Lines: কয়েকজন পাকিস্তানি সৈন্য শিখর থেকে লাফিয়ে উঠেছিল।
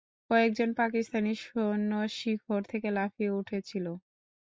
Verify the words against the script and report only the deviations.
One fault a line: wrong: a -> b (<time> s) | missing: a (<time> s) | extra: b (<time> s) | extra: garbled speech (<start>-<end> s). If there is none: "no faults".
no faults